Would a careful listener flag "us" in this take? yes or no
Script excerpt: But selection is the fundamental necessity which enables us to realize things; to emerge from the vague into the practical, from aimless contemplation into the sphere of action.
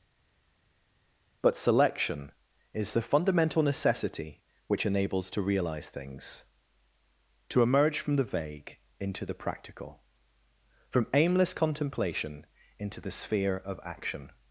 yes